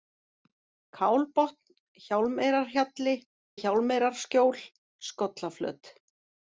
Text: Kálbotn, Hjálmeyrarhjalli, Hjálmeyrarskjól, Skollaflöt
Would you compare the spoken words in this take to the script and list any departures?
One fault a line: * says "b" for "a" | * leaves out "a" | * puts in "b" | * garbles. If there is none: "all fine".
all fine